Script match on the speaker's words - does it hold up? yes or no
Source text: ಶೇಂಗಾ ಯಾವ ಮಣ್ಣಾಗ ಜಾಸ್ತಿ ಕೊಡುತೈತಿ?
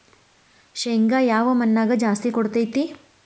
yes